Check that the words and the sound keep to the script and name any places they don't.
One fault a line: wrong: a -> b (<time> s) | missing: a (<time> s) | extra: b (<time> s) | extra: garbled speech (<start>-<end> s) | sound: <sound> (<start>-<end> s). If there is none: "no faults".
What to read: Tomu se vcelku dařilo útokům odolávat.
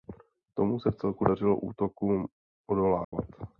sound: dropout (3.0-3.1 s)